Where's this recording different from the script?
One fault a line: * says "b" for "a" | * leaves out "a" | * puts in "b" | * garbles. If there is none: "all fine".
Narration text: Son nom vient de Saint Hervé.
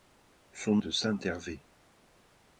* leaves out "nom vient"